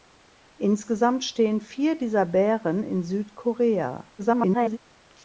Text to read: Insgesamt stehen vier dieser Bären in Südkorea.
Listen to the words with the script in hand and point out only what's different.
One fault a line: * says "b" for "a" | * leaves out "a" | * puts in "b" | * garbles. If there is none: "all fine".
* garbles